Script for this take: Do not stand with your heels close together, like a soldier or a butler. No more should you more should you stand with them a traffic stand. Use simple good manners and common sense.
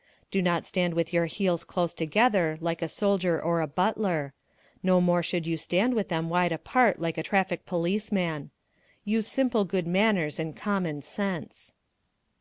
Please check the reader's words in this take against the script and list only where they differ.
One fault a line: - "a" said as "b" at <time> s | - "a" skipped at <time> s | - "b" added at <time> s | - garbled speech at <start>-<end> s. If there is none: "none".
- "more should you stand with them" said as "stand with them wide apart like" at 5.6 s
- "stand" said as "policeman" at 7.6 s